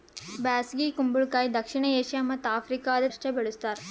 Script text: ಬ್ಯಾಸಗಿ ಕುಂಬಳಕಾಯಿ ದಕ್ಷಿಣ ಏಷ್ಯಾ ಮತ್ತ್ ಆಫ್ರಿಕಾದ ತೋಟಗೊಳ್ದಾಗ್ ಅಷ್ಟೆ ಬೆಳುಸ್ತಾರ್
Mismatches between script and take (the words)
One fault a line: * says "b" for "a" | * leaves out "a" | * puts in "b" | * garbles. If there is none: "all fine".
* leaves out "ತೋಟಗೊಳ್ದಾಗ್"